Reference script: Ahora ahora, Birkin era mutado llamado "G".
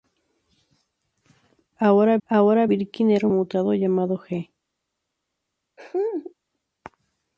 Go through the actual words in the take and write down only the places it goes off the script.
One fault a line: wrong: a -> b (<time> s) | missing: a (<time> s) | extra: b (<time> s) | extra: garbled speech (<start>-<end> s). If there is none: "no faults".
no faults